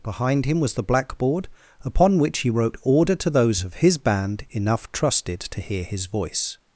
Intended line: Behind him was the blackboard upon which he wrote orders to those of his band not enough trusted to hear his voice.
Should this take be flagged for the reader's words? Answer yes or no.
yes